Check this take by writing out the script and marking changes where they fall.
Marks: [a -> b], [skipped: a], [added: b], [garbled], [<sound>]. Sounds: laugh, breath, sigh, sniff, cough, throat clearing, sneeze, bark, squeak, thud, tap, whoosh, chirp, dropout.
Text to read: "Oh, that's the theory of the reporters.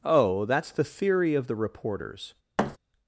"Oh, that's the theory of the reporters. [thud]